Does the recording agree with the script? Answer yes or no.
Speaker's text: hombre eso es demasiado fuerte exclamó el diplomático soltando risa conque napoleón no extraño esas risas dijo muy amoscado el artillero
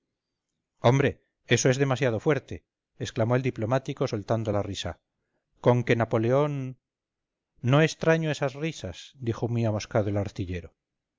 no